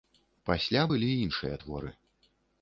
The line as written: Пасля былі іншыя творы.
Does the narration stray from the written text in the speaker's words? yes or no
no